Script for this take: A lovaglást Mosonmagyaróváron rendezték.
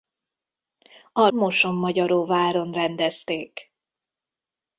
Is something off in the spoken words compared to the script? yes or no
yes